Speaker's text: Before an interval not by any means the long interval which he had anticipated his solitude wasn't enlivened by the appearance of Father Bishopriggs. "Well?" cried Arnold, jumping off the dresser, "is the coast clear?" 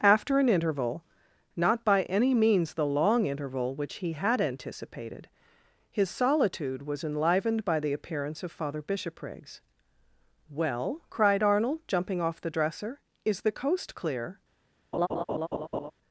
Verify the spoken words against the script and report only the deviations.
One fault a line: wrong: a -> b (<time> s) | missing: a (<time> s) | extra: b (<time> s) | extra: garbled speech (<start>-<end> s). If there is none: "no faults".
wrong: Before -> After (0.0 s)
wrong: wasn't -> was (6.8 s)